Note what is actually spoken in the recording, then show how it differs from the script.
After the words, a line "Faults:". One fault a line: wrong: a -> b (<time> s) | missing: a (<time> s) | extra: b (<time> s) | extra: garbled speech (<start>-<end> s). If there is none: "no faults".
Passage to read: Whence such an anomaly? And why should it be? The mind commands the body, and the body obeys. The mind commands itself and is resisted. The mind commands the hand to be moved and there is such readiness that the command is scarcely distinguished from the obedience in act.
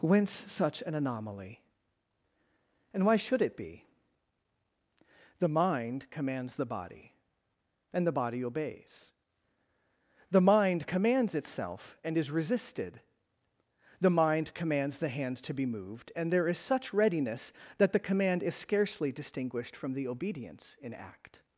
Whence such an anomaly? And why should it be? The mind commands the body, and the body obeys. The mind commands itself and is resisted. The mind commands the hand to be moved and there is such readiness that the command is scarcely distinguished from the obedience in act.
Faults:
no faults